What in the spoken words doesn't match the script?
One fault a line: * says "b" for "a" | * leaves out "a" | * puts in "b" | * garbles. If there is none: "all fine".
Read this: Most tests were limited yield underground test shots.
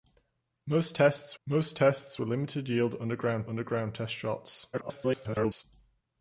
* puts in "most tests"
* puts in "underground"
* garbles